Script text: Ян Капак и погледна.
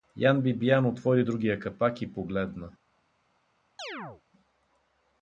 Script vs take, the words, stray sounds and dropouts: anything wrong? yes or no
yes